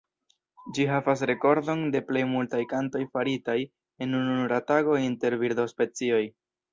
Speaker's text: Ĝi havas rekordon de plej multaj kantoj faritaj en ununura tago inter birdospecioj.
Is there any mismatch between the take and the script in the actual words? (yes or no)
no